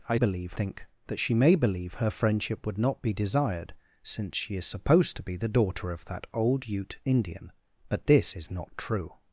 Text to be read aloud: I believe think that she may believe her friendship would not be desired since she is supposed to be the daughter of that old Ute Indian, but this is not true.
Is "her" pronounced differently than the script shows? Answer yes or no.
no